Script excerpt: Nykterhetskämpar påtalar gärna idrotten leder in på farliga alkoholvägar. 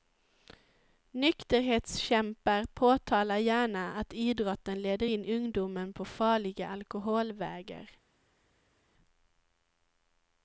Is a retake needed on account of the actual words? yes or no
yes